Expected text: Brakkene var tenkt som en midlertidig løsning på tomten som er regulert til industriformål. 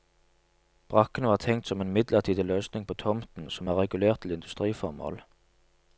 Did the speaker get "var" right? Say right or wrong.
right